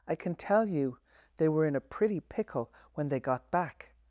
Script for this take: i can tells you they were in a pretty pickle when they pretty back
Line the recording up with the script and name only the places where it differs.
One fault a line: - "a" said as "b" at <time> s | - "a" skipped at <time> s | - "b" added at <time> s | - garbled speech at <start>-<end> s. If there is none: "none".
- "tells" said as "tell" at 0.3 s
- "pretty" said as "got" at 3.2 s